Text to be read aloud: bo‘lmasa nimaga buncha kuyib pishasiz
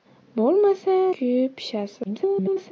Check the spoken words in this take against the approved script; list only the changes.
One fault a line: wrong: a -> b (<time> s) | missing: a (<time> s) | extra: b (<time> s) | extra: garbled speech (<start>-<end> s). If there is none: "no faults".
missing: nimaga buncha (0.9 s)
extra: garbled speech (2.0-2.7 s)